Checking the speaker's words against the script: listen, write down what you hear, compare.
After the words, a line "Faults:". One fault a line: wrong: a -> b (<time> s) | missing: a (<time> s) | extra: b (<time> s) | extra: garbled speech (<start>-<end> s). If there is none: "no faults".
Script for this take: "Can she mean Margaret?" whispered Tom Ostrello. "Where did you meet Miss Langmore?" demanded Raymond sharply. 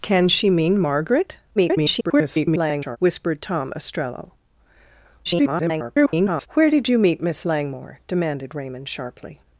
"Can she mean Margaret?" [garbled] whispered Tom Ostrello. [garbled] "Where did you meet Miss Langmore?" demanded Raymond sharply.
Faults:
extra: garbled speech (1.6-3.0 s)
extra: garbled speech (5.2-6.5 s)